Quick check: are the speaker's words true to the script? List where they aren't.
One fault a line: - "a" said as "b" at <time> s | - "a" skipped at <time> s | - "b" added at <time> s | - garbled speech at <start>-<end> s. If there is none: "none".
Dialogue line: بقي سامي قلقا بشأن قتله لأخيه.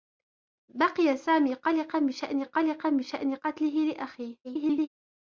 - "قلقا بشأن" added at 2.4 s
- garbled speech at 4.4-4.9 s